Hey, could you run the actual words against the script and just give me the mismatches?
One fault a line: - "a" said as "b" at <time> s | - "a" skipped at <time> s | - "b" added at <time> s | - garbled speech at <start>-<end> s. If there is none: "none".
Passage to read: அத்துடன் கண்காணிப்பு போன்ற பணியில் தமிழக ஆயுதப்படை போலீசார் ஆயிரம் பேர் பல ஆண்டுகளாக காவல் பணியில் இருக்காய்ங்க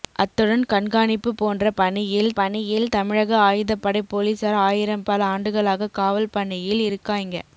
- "பணியில்" added at 2.3 s
- "பேர்" skipped at 5.1 s